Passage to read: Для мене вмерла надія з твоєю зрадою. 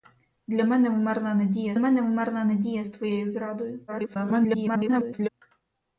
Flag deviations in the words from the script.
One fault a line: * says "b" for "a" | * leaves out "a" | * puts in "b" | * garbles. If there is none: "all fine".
* puts in "мене вмерла надія"
* garbles